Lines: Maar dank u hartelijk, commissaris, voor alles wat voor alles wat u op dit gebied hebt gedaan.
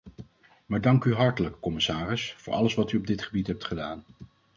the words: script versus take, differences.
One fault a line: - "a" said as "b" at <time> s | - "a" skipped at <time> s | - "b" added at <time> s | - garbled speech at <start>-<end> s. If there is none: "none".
- "voor alles wat" skipped at 2.9 s